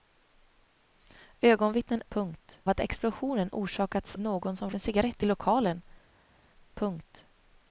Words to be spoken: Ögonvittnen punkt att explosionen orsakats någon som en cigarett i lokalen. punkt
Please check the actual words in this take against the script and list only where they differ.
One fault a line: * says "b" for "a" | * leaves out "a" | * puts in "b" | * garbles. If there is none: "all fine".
all fine